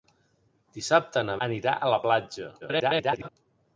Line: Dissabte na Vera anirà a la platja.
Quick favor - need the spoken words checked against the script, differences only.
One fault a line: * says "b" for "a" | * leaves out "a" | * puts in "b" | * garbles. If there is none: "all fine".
* leaves out "Vera"
* garbles